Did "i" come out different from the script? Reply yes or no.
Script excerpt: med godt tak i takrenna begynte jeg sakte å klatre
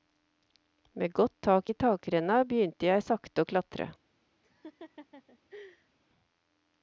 no